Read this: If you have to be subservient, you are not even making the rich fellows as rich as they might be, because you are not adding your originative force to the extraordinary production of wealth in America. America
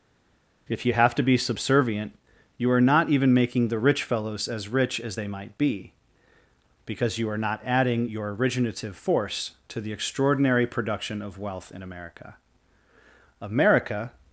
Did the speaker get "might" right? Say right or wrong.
right